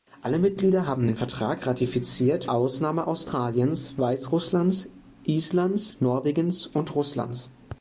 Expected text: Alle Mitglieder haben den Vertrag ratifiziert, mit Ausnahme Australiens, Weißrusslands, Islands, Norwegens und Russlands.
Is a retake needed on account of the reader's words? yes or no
yes